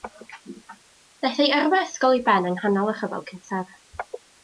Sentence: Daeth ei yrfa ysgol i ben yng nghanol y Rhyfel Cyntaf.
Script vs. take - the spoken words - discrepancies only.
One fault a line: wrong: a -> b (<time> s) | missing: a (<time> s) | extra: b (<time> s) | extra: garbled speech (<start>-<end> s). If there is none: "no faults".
no faults